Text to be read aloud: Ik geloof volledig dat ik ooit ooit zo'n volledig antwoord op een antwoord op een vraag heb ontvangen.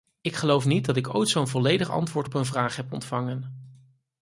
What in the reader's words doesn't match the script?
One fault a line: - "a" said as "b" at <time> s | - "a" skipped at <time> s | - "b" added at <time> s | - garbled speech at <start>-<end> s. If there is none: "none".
- "volledig" said as "niet" at 0.7 s
- "ooit" skipped at 1.3 s
- "antwoord op een" skipped at 2.4 s